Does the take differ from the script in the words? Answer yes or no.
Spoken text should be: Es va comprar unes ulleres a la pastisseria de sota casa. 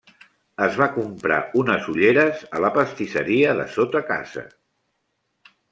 no